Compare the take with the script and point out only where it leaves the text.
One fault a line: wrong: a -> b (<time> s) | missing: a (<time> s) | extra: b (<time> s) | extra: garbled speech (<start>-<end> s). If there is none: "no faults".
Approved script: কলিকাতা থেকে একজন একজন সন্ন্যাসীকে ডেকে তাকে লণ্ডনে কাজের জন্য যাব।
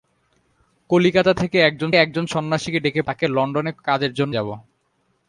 no faults